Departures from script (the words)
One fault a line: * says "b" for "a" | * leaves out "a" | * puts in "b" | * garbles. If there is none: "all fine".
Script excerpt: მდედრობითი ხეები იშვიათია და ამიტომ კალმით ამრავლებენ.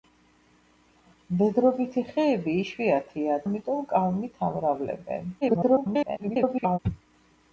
* leaves out "და"
* garbles